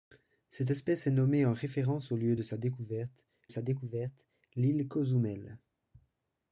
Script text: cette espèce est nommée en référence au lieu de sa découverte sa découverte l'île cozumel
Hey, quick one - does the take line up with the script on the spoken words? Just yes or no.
yes